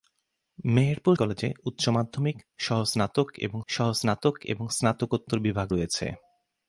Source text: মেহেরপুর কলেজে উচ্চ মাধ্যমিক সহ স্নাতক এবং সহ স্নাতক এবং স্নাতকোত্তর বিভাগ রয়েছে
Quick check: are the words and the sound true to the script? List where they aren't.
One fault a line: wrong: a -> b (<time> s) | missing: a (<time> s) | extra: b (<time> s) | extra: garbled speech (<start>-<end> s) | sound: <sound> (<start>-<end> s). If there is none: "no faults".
no faults